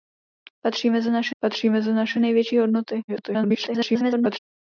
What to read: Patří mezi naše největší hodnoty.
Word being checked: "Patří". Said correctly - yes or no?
yes